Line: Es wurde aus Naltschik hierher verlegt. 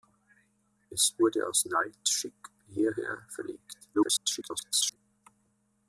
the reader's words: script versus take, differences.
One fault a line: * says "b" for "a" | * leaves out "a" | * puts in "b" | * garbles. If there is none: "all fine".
* garbles